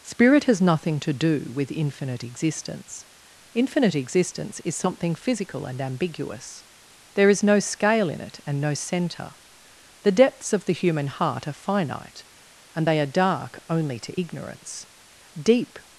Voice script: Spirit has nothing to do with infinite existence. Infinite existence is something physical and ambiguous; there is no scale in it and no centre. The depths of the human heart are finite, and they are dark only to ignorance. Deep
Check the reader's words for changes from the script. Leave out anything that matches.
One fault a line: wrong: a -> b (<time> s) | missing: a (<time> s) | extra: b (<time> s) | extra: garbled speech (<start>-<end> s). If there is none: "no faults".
no faults